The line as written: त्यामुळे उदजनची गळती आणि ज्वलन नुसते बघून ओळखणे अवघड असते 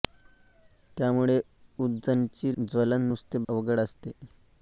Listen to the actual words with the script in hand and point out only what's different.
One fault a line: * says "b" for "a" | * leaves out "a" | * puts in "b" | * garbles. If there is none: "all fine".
* leaves out "गळती आणि"
* leaves out "बघून ओळखणे"